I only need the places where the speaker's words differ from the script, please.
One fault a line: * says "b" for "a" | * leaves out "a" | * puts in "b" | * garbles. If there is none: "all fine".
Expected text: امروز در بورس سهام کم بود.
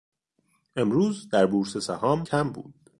all fine